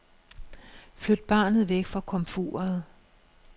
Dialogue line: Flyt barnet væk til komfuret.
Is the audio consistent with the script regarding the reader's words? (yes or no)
no